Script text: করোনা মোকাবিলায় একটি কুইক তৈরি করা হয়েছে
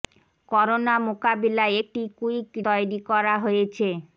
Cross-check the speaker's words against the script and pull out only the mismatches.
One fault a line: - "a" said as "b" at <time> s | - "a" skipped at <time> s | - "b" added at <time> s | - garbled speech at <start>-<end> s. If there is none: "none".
none